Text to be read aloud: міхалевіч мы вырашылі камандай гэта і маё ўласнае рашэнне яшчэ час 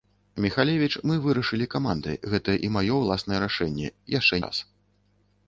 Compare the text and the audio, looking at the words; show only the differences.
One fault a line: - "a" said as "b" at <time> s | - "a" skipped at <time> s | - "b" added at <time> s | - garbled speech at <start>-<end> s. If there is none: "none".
none